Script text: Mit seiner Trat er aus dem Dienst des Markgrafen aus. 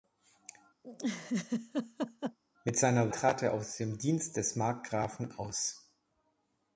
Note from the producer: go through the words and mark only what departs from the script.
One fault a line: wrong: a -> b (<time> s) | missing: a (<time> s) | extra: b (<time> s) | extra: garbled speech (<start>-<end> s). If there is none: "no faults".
no faults